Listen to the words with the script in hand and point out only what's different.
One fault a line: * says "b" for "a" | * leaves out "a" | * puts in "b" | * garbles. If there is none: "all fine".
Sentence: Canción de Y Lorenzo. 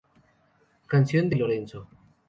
all fine